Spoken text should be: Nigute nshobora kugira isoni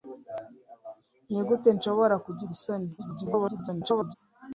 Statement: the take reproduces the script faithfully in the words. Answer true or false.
false